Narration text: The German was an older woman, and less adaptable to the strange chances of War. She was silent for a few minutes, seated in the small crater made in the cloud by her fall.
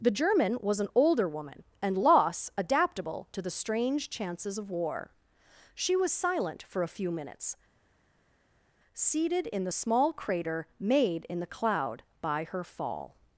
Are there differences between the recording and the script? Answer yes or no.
yes